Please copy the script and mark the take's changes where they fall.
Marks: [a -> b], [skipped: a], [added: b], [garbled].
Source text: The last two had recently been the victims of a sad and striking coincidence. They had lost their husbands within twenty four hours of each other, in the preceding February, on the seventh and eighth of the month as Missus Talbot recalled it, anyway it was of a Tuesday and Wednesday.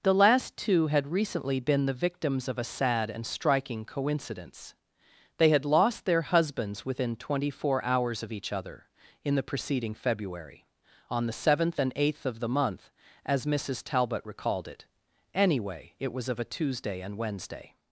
The last two had recently been the victims of a sad and striking coincidence. They had lost their husbands within twenty four hours of each other, in the preceding February, on the seventh and eighth of the month as Missus Talbot recalled it, anyway it was of a Tuesday and Wednesday.